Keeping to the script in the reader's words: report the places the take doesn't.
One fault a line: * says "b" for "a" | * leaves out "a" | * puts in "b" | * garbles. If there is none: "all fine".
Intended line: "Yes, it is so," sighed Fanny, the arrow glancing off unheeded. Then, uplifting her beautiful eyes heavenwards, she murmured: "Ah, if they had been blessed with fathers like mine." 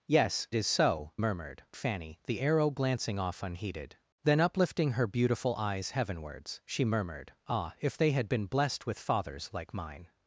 * leaves out "it"
* says "murmured" for "sighed"